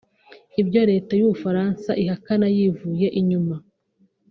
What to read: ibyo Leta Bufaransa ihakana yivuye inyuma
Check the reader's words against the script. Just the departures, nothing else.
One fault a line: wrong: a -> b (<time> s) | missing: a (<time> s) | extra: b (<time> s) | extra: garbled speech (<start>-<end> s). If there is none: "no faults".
extra: y'u (1.2 s)